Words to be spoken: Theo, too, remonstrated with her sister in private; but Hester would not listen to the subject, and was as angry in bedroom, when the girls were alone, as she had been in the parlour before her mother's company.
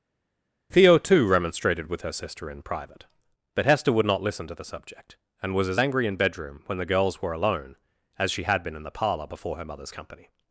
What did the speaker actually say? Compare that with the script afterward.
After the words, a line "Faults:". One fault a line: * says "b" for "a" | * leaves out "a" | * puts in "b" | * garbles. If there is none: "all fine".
Theo, too, remonstrated with her sister in private; but Hester would not listen to the subject, and was as angry in bedroom, when the girls were alone, as she had been in the parlour before her mother's company.
Faults:
all fine